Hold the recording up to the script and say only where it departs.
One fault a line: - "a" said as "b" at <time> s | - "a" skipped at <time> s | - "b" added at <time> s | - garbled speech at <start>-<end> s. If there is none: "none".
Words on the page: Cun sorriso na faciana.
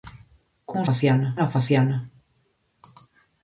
- "sorriso" said as "faciana" at 0.9 s